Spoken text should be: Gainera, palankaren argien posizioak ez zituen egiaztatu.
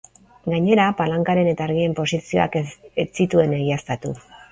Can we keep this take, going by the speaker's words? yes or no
no